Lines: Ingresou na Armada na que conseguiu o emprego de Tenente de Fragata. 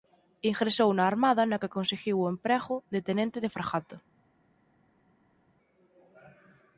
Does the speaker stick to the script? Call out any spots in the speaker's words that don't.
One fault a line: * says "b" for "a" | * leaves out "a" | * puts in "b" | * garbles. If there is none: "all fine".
all fine